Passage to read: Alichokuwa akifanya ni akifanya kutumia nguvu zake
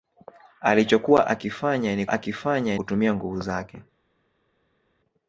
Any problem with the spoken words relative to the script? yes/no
no